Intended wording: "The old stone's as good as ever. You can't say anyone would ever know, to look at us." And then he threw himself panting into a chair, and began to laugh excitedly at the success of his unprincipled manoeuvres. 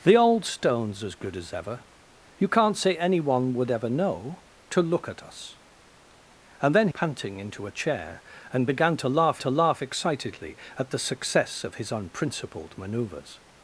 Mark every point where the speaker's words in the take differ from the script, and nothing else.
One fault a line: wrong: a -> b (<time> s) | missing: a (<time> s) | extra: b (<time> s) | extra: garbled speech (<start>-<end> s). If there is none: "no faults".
missing: he threw himself (6.9 s)
extra: to laugh (9.4 s)